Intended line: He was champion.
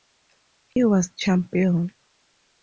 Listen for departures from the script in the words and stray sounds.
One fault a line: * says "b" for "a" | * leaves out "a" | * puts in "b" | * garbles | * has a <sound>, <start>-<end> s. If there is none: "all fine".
* has a dropout, 0.7-0.8 s